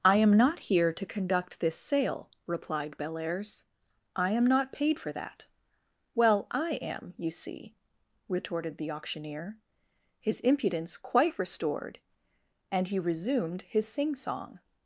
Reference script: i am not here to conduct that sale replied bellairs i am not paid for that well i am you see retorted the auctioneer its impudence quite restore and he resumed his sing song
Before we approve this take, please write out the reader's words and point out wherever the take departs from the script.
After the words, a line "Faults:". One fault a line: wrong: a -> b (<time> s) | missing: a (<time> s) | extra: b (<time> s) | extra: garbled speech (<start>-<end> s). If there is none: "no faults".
i am not here to conduct this sale replied bellairs i am not paid for that well i am you see retorted the auctioneer his impudence quite restored and he resumed his sing song
Faults:
wrong: that -> this (1.6 s)
wrong: its -> his (10.2 s)
wrong: restore -> restored (11.4 s)